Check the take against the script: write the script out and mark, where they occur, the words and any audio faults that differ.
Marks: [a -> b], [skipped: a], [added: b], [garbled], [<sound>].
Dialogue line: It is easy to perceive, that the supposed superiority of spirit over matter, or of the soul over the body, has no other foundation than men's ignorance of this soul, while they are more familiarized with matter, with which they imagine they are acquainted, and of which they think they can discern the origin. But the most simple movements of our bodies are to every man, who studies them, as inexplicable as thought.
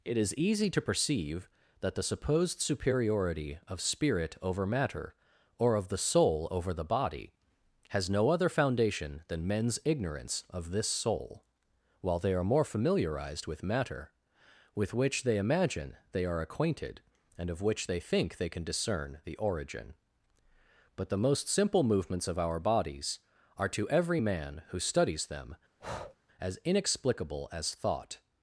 It is easy to perceive, that the supposed superiority of spirit over matter, or of the soul over the body, has no other foundation than men's ignorance of this soul, while they are more familiarized with matter, with which they imagine they are acquainted, and of which they think they can discern the origin. But the most simple movements of our bodies are to every man, who studies them, [breath] as inexplicable as thought.